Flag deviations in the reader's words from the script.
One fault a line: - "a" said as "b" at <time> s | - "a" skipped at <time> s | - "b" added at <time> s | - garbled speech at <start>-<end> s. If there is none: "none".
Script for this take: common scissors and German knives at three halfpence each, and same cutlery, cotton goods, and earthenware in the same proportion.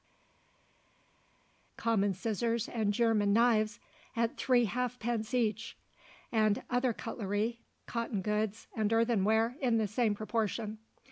- "same" said as "other" at 6.7 s